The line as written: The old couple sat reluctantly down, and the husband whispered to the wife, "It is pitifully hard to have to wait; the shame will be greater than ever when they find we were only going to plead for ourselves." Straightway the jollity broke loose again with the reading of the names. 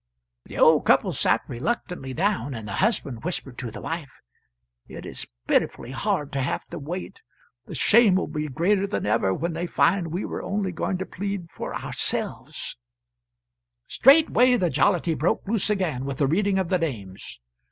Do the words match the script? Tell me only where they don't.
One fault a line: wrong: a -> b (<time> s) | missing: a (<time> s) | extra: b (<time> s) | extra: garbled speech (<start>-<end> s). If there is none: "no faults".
no faults